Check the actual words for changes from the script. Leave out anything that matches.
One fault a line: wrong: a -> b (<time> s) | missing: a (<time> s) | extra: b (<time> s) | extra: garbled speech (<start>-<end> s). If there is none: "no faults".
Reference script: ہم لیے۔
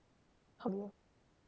no faults